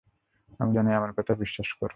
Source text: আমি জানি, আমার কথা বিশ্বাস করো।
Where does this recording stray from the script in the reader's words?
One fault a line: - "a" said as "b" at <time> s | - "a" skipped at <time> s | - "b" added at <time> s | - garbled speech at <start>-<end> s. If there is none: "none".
none